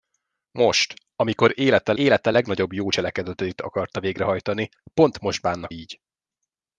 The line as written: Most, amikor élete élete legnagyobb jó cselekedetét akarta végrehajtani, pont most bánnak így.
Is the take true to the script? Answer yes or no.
yes